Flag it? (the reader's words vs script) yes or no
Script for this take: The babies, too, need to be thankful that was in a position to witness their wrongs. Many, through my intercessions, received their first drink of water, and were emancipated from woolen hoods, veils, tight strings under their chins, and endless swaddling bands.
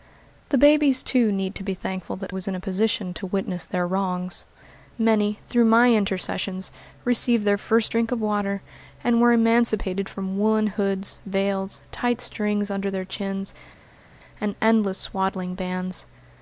no